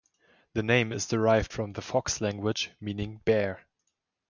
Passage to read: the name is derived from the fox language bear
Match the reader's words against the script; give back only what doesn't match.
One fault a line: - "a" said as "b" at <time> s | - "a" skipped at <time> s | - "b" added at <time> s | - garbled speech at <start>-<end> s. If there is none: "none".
- "meaning" added at 2.8 s